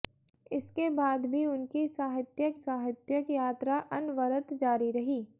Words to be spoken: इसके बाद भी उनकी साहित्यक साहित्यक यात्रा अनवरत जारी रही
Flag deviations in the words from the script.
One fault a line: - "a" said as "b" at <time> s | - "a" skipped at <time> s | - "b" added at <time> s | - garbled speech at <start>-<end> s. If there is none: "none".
none